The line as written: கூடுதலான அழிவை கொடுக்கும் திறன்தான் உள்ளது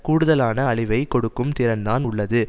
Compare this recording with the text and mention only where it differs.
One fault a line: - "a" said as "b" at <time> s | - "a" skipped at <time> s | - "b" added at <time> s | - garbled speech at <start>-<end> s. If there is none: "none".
none